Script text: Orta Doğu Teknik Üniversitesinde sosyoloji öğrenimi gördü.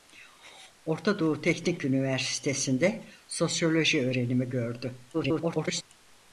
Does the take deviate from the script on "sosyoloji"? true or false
false